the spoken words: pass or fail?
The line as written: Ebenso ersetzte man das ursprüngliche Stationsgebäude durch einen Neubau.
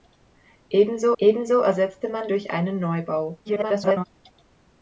fail